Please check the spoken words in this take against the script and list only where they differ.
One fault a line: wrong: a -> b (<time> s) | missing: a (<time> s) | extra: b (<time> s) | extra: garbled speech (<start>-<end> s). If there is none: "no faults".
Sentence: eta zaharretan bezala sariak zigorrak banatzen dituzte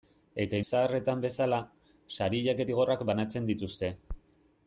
no faults